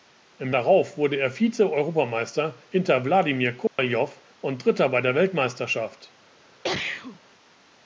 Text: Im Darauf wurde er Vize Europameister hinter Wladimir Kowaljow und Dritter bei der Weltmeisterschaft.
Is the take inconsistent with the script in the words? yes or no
no